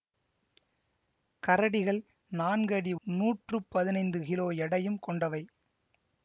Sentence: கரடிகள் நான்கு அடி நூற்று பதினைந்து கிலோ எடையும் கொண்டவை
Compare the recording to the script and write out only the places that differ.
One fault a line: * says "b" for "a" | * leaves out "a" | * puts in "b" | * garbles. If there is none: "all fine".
all fine